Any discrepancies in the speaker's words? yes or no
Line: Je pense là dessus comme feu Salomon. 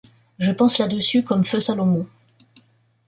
no